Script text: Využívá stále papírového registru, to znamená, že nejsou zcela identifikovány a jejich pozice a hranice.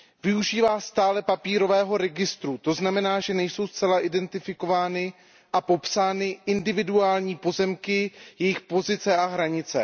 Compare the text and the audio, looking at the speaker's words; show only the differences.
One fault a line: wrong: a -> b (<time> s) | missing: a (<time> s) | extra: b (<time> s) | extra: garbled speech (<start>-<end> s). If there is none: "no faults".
extra: popsány individuální pozemky (5.6 s)